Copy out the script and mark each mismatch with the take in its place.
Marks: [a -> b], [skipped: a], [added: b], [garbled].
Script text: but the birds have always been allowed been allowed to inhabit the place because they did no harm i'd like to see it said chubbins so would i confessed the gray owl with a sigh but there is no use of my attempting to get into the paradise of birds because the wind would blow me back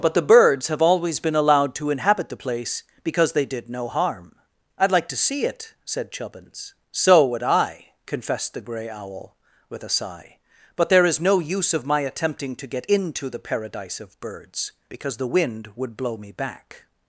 but the birds have always been allowed [skipped: been allowed] to inhabit the place because they did no harm i'd like to see it said chubbins so would i confessed the gray owl with a sigh but there is no use of my attempting to get into the paradise of birds because the wind would blow me back